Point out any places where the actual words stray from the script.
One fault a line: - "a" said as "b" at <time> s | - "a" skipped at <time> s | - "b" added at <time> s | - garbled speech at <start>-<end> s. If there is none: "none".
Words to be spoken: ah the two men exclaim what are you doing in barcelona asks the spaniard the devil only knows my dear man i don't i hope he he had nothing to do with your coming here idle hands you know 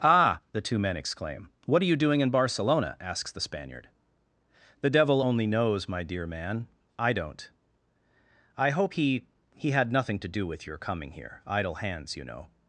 none